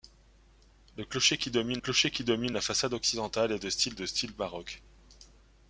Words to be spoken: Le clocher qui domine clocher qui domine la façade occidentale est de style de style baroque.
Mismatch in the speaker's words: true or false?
false